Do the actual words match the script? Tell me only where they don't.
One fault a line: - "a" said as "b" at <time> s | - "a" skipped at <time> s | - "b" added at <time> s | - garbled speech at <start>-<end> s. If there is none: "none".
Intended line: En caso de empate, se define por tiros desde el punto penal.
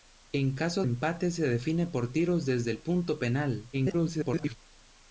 - "de" skipped at 0.8 s
- garbled speech at 3.7-4.6 s